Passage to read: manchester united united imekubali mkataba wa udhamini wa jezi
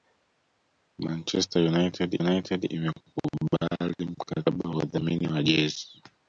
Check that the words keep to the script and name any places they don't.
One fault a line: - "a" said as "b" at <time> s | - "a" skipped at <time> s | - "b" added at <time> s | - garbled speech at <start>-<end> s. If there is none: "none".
none